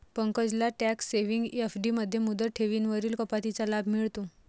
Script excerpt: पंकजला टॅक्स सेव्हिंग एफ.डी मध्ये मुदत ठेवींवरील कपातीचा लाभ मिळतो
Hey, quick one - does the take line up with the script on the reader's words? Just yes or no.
yes